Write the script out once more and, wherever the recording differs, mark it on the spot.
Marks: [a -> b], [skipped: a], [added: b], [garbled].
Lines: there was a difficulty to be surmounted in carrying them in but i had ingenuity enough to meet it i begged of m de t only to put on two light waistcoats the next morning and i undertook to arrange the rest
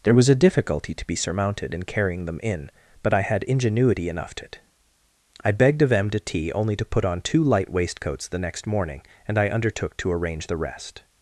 there was a difficulty to be surmounted in carrying them in but i had ingenuity enough to [skipped: meet] it i begged of m de t only to put on two light waistcoats the next morning and i undertook to arrange the rest